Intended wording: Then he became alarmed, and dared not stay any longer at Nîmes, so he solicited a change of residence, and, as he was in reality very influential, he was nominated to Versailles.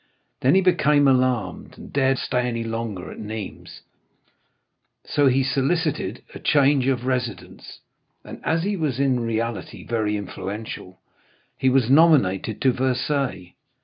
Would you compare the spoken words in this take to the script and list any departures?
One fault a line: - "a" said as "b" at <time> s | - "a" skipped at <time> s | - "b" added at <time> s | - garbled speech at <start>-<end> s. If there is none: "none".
- "not" skipped at 2.2 s